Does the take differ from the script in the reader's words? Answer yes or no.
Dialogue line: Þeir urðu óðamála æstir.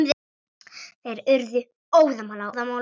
no